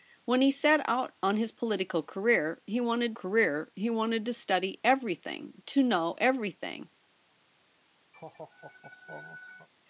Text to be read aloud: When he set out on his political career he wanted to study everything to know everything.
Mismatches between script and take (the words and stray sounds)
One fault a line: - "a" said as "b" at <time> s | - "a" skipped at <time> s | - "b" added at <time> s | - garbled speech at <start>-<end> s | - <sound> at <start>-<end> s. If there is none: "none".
- "career he wanted" added at 3.1 s
- laugh at 8.1-9.7 s